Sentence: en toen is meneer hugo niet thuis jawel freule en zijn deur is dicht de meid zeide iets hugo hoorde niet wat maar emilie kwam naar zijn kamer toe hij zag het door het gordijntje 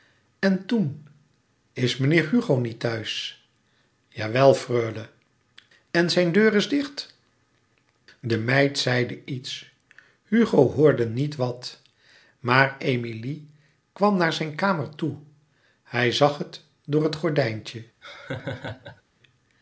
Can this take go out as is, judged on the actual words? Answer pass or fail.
pass